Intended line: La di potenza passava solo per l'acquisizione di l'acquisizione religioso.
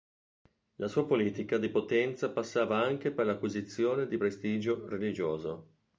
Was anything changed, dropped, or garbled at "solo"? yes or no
yes